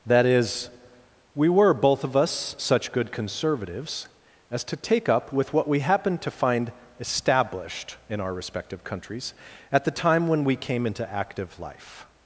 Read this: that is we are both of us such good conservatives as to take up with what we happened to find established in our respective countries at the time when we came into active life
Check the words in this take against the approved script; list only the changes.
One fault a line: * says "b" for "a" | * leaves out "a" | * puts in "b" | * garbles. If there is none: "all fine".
* says "were" for "are"